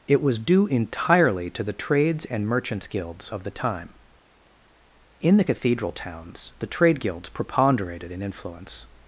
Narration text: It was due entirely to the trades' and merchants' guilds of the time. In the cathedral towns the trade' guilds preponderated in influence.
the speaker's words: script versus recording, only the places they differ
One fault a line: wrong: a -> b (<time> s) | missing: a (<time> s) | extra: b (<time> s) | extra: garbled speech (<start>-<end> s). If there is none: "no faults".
no faults